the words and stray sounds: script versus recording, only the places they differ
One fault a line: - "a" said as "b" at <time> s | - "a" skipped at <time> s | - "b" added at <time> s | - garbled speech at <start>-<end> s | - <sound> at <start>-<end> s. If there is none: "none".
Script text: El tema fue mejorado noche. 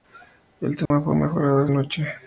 - dropout at 0.9-0.9 s